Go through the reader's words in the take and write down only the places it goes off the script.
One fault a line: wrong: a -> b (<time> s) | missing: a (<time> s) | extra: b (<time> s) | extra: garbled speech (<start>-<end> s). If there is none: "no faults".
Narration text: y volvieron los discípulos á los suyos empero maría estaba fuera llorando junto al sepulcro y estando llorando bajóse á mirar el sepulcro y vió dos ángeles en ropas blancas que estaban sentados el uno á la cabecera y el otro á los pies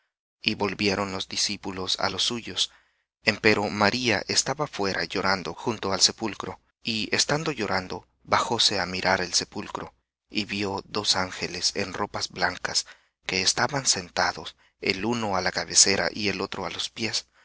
no faults